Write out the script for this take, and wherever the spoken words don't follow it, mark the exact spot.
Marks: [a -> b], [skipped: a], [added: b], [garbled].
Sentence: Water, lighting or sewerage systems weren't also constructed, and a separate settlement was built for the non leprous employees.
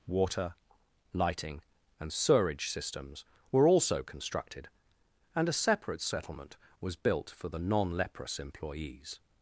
Water, lighting [or -> and] sewerage systems [weren't -> were] also constructed, and a separate settlement was built for the non leprous employees.